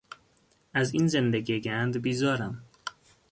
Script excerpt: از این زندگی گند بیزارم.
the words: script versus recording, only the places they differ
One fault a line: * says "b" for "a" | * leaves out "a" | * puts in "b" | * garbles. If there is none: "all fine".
all fine